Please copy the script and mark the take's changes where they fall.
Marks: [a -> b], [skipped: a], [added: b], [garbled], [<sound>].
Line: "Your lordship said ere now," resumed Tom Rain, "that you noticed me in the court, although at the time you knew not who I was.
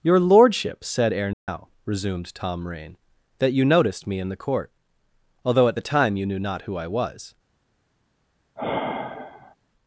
"Your lordship said ere now," [dropout] resumed Tom Rain, "that you noticed me in the court, although at the time you knew not who I was. [sigh]